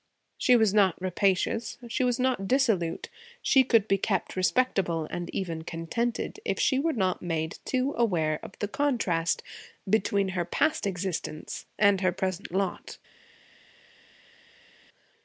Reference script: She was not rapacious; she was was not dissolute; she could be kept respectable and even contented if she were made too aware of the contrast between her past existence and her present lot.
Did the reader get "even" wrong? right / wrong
right